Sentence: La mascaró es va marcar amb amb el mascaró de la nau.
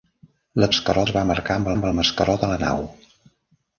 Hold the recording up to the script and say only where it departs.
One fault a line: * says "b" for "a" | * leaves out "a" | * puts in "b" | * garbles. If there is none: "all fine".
all fine